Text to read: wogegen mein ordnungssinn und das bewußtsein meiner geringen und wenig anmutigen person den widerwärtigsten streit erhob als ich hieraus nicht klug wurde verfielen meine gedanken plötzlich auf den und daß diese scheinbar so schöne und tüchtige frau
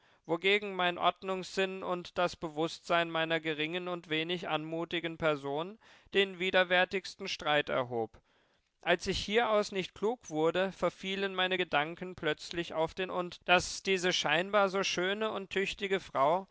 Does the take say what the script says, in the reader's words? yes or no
yes